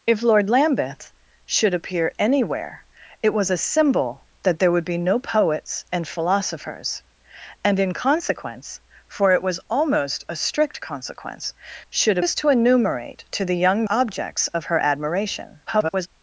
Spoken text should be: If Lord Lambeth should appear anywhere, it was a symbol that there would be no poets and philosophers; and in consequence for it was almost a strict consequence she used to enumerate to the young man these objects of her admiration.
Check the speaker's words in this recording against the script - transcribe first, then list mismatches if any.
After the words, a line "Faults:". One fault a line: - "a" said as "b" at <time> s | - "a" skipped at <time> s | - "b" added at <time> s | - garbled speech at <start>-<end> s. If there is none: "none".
If Lord Lambeth should appear anywhere, it was a symbol that there would be no poets and philosophers; and in consequence for it was almost a strict consequence should used to enumerate to the young objects of her admiration. [garbled]
Faults:
- "she" said as "should" at 11.9 s
- "man these" skipped at 13.9 s
- garbled speech at 15.7-16.1 s